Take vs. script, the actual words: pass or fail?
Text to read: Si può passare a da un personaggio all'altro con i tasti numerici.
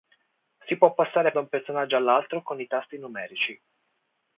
pass